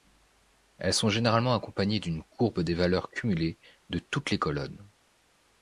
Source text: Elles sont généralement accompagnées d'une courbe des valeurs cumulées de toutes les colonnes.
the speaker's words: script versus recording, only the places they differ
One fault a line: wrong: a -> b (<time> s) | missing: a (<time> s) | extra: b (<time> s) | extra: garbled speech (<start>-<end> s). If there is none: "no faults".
no faults